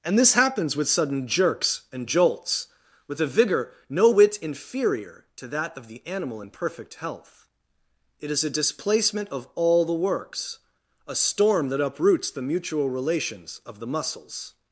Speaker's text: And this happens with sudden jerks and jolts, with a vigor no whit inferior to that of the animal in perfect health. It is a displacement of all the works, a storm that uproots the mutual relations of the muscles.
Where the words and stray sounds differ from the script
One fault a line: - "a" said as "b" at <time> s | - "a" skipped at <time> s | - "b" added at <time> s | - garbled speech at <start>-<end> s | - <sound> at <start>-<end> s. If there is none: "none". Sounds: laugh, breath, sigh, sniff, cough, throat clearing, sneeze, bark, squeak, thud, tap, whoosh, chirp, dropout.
none